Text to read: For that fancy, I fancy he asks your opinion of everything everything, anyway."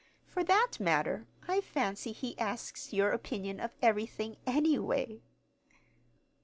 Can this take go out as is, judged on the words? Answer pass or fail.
fail